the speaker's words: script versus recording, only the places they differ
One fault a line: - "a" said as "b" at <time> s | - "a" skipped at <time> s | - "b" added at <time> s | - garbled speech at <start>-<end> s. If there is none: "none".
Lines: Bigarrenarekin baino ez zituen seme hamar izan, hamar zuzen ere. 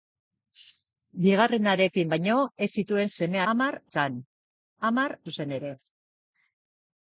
none